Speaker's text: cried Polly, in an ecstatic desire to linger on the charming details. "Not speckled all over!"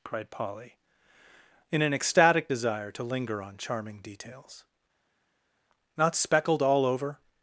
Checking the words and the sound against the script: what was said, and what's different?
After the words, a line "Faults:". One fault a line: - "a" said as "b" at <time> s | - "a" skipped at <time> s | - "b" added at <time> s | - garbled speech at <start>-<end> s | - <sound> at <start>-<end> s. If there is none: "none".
cried Polly, in an ecstatic desire to linger on charming details. "Not speckled all over!"
Faults:
- "the" skipped at 3.6 s